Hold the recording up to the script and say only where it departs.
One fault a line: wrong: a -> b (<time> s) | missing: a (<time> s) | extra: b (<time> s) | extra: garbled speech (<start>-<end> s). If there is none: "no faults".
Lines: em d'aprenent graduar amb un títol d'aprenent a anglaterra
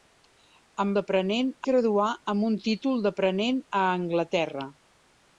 no faults